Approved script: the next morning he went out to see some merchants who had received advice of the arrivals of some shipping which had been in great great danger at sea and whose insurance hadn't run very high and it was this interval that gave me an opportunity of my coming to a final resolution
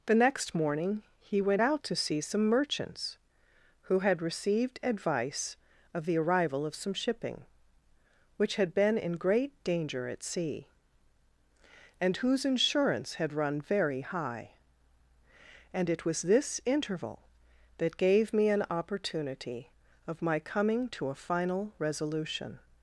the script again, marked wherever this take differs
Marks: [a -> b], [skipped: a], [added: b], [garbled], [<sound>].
the next morning he went out to see some merchants who had received advice of the [arrivals -> arrival] of some shipping which had been in great [skipped: great] danger at sea and whose insurance [hadn't -> had] run very high and it was this interval that gave me an opportunity of my coming to a final resolution